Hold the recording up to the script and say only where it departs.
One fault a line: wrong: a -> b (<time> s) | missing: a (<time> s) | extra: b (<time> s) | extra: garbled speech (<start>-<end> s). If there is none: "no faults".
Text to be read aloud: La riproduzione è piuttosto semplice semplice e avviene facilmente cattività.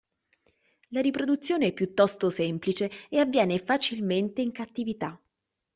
missing: semplice (2.9 s)
extra: in (4.4 s)